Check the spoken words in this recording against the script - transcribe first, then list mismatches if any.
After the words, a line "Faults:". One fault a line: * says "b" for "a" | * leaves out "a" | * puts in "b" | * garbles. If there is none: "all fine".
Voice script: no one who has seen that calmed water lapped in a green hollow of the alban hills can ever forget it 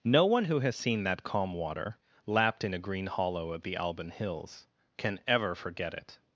no one who has seen that calm water lapped in a green hollow of the alban hills can ever forget it
Faults:
* says "calm" for "calmed"